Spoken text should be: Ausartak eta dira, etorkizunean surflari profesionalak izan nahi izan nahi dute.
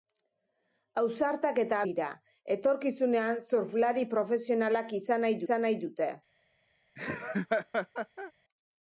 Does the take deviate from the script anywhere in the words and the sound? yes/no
yes